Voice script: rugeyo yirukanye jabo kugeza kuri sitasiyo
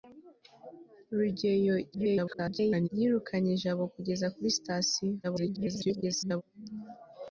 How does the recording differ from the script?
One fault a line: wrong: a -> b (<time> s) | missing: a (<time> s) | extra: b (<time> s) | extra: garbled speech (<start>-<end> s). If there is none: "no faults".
extra: garbled speech (1.9-2.9 s)
extra: garbled speech (5.2-6.4 s)